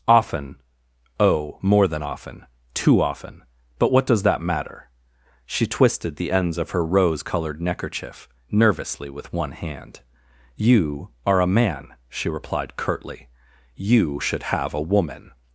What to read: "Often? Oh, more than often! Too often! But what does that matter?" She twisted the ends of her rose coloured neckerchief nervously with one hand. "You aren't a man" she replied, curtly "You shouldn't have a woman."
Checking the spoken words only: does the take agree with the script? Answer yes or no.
no